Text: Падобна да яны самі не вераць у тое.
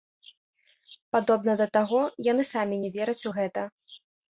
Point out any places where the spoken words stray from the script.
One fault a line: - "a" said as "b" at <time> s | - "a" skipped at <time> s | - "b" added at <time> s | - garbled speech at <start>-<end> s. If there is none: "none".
- "таго" added at 1.8 s
- "тое" said as "гэта" at 3.4 s